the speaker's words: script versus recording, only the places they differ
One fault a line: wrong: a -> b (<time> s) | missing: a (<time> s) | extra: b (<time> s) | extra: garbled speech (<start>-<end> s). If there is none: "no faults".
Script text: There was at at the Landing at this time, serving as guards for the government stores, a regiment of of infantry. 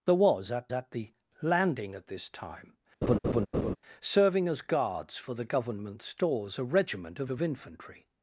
no faults